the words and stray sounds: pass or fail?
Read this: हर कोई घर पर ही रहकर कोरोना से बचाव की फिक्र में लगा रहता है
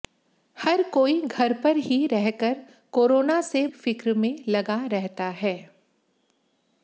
fail